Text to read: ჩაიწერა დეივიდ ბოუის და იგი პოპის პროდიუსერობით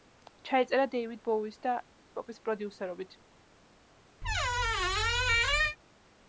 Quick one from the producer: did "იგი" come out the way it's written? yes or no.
no